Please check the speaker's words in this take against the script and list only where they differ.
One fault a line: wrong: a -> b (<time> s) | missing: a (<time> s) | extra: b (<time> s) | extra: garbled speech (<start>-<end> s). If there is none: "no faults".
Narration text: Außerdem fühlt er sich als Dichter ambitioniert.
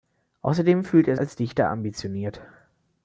missing: sich (1.1 s)